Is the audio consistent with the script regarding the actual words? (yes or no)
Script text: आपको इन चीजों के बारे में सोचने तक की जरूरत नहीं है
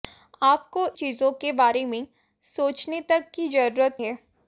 no